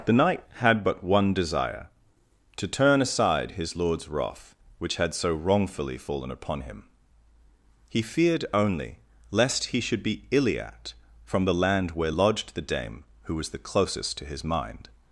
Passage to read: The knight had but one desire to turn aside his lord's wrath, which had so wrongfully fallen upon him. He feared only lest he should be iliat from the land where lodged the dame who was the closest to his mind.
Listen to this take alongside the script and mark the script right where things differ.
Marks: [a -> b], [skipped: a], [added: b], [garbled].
The knight had but one desire to turn aside his lord's wrath, which had so wrongfully fallen upon him. He feared only lest he should be iliat from the land where lodged the dame who was the closest to his mind.